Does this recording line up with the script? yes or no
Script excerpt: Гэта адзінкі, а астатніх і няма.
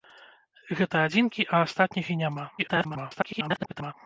no